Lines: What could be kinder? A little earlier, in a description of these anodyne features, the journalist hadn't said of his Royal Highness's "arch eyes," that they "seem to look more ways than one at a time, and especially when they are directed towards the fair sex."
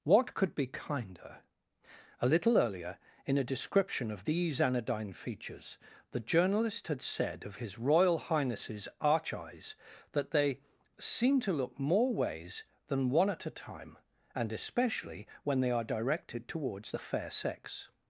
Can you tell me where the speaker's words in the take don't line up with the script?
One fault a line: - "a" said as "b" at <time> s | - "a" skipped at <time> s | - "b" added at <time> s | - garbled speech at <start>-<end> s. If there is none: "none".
- "hadn't" said as "had" at 6.9 s